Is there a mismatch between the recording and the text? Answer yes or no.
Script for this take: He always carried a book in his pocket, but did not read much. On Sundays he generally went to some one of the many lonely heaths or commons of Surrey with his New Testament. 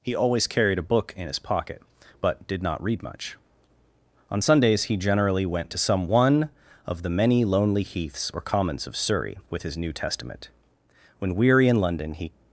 yes